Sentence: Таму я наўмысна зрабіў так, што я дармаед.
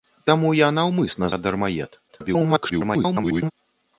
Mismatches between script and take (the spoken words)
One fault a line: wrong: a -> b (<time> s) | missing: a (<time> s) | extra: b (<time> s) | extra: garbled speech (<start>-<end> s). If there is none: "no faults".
missing: зрабіў так што (1.3 s)
extra: garbled speech (2.1-3.5 s)